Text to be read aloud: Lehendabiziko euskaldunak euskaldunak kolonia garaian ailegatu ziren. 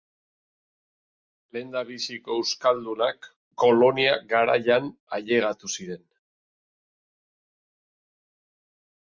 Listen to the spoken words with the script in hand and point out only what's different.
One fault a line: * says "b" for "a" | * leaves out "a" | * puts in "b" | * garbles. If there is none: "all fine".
* leaves out "euskaldunak"